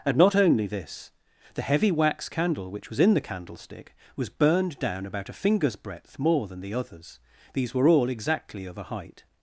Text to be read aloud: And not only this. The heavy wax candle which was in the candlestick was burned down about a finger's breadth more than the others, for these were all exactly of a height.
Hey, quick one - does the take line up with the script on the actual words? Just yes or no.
no